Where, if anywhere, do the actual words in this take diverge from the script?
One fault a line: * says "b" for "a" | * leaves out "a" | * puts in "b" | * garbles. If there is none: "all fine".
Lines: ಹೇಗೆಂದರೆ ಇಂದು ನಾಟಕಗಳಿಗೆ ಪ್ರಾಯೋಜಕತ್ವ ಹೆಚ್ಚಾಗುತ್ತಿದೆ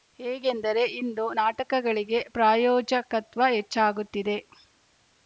all fine